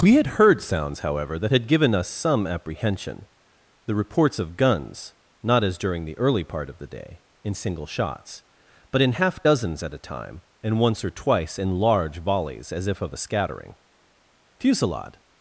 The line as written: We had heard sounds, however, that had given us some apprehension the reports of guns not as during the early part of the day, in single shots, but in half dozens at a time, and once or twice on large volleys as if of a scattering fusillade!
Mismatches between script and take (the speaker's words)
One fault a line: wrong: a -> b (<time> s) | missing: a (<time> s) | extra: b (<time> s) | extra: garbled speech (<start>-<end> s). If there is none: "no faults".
wrong: on -> in (11.6 s)